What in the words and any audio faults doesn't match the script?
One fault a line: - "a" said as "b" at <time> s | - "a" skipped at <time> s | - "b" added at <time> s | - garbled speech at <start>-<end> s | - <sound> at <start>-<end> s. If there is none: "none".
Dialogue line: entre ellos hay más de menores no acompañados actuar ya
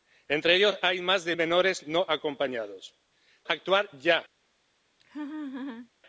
- laugh at 5.0-5.9 s